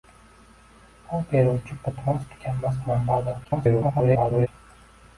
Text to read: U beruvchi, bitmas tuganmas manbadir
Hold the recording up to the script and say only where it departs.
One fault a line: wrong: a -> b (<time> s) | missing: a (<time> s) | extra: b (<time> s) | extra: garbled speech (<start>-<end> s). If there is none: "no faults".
extra: garbled speech (3.4-4.5 s)